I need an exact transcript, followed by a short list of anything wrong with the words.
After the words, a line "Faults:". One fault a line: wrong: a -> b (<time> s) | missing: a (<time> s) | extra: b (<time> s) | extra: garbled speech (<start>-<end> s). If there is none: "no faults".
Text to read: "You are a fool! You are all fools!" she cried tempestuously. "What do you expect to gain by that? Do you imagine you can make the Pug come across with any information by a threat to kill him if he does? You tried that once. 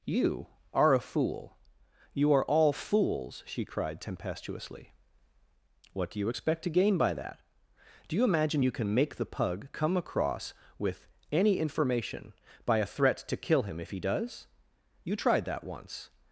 "You are a fool! You are all fools!" she cried tempestuously. "What do you expect to gain by that? Do you imagine you can make the Pug come across with any information by a threat to kill him if he does? You tried that once.
Faults:
no faults